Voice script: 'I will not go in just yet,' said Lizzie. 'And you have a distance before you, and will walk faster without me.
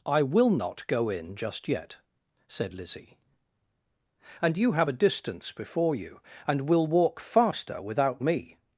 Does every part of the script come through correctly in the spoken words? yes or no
yes